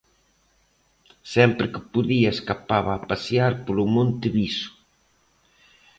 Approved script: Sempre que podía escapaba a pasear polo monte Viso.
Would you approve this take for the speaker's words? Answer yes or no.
yes